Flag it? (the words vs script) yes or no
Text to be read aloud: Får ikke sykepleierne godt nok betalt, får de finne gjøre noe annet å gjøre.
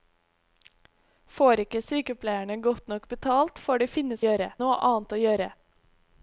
no